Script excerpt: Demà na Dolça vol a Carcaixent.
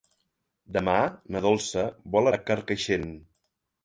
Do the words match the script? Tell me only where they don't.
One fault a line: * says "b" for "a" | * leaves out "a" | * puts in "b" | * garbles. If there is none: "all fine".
all fine